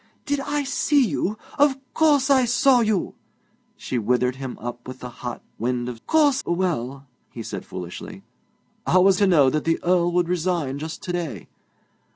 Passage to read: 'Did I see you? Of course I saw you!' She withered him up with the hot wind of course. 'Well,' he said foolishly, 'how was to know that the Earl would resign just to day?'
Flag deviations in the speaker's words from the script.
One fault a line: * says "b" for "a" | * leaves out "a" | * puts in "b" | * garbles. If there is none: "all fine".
all fine